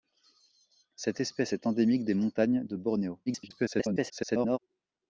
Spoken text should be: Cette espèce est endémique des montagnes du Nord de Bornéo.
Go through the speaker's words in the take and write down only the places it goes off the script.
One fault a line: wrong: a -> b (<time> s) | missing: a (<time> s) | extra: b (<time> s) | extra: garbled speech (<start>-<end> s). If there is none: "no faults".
missing: du Nord (2.6 s)
extra: garbled speech (3.3-4.6 s)